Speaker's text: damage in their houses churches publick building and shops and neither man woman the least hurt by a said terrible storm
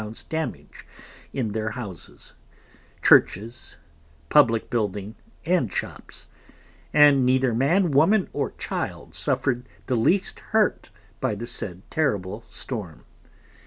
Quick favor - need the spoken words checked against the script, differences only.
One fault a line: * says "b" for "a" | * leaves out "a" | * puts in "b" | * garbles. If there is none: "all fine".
* puts in "or child suffered"
* says "the" for "a"